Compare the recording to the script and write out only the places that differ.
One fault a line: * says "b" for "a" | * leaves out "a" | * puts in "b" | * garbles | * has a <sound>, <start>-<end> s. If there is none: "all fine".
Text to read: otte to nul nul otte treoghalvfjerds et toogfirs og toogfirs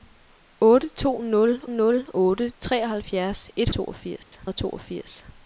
* has a dropout, 4.2-4.3 s